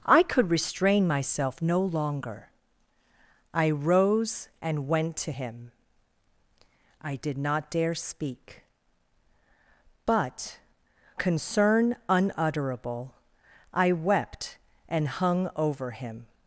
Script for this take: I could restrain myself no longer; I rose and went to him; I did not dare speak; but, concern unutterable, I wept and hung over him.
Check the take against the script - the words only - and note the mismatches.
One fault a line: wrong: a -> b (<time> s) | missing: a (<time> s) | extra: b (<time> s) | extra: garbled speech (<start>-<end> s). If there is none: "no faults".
no faults